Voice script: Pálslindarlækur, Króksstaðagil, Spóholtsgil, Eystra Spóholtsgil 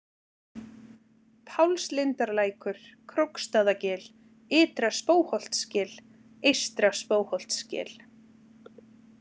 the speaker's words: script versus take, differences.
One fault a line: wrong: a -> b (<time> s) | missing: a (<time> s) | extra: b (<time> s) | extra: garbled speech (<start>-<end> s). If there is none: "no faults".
extra: Ytra (4.6 s)